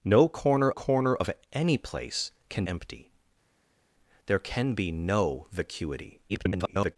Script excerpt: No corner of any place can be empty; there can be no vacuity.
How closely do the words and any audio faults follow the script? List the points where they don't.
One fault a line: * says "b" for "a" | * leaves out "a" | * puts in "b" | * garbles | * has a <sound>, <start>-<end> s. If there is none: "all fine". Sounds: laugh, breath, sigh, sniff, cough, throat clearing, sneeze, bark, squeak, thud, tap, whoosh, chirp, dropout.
* puts in "corner"
* leaves out "be"
* garbles